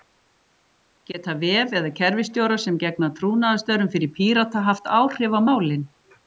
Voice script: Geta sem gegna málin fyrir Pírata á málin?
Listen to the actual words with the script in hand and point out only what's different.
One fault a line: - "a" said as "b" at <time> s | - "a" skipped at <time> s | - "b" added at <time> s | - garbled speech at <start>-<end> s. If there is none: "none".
- "vef eða kerfisstjórar" added at 1.4 s
- "málin" said as "trúnaðarstörfum" at 3.2 s
- "haft áhrif" added at 4.7 s